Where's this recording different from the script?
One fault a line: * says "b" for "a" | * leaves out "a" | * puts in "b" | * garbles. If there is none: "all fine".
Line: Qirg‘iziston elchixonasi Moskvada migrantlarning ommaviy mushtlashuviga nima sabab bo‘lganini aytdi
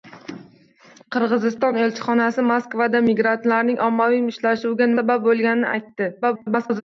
* leaves out "nima"
* garbles